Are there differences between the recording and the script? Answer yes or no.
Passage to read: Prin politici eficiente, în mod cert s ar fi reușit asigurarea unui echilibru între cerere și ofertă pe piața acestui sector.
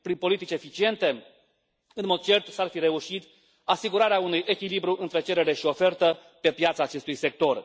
no